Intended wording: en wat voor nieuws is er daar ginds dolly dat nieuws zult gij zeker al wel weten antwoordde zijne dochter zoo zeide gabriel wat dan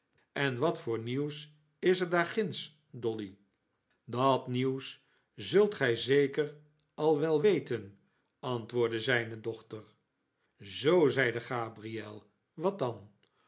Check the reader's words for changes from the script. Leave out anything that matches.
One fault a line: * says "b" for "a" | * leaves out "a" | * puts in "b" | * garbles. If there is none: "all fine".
all fine